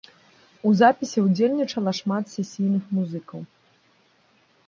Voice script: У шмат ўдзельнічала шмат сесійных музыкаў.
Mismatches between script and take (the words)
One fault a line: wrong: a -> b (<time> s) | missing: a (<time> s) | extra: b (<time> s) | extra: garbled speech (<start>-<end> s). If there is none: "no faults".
wrong: шмат -> запісе (0.8 s)